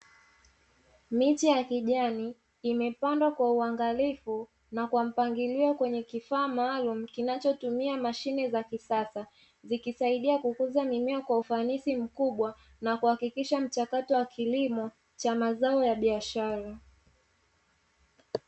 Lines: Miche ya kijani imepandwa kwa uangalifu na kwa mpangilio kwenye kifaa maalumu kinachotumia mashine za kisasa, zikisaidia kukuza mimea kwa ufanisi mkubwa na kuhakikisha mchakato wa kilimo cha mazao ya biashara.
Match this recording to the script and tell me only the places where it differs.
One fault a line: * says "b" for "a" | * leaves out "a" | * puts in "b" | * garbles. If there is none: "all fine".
all fine